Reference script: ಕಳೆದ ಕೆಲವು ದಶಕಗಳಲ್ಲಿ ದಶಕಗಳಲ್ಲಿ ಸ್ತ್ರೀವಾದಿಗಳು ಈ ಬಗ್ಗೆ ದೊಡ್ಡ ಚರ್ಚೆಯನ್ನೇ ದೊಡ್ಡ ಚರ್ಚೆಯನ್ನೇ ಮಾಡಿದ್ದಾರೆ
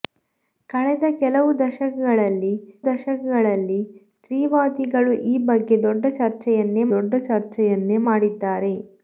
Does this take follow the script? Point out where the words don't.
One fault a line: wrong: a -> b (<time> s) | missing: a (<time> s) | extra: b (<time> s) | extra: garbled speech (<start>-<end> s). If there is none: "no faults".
no faults